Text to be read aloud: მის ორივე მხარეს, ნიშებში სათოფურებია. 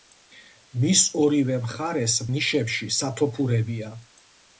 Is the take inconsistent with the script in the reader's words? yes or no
no